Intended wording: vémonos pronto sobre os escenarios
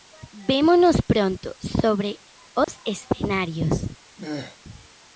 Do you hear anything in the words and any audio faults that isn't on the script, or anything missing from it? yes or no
yes